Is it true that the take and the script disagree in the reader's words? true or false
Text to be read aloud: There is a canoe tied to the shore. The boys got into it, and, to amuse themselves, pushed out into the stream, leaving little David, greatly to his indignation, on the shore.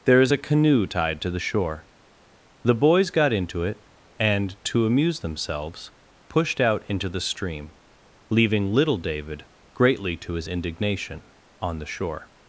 false